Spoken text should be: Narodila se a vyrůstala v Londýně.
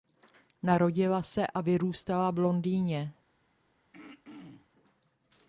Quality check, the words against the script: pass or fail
pass